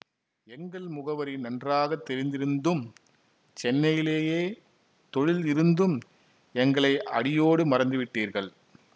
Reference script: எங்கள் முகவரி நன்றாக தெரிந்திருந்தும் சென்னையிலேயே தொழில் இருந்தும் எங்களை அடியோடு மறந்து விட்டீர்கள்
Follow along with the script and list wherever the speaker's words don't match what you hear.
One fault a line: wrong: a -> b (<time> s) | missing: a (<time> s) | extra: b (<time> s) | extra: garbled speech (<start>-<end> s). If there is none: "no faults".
no faults